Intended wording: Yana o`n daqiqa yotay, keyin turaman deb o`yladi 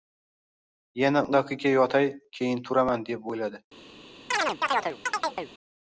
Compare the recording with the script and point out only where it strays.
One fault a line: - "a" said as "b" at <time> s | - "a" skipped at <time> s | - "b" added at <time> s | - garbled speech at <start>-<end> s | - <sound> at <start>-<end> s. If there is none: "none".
- "o`n" skipped at 1.2 s
- chirp at 4.3-5.5 s